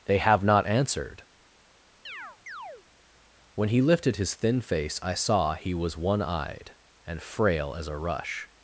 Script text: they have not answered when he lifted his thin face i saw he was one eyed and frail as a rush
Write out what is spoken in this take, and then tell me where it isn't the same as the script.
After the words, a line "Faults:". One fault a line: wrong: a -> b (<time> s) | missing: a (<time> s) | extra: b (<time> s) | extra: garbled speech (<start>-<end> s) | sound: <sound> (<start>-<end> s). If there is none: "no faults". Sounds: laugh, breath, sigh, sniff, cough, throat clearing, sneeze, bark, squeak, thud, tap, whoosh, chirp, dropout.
they have not answered when he lifted his thin face i saw he was one eyed and frail as a rush
Faults:
sound: chirp (2.1-2.8 s)